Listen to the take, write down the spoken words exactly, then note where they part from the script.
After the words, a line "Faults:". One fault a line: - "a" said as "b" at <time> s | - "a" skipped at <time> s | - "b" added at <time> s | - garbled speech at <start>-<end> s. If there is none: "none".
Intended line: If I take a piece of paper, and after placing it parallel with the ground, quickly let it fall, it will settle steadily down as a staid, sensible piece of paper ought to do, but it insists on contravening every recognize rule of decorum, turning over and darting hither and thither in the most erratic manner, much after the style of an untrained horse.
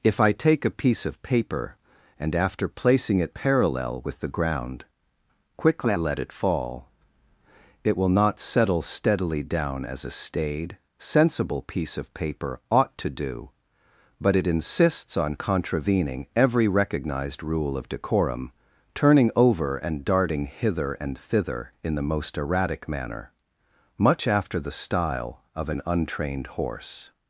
If I take a piece of paper, and after placing it parallel with the ground, quickly let it fall, it will not settle steadily down as a staid, sensible piece of paper ought to do, but it insists on contravening every recognized rule of decorum, turning over and darting hither and thither in the most erratic manner, much after the style of an untrained horse.
Faults:
- "not" added at 8.1 s
- "recognize" said as "recognized" at 16.7 s